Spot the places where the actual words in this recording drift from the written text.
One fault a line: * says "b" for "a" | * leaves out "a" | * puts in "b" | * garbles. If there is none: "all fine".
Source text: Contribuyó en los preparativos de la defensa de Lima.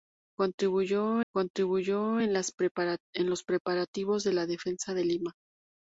* puts in "contribuyó"